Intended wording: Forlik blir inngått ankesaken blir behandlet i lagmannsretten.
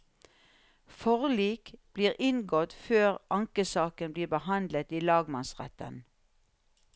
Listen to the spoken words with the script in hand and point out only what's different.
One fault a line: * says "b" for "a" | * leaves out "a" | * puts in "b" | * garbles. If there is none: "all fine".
* puts in "før"